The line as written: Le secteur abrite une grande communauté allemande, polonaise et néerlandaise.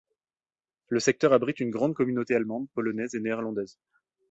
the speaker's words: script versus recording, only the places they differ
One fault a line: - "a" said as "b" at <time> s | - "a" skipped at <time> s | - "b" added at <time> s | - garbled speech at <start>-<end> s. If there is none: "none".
none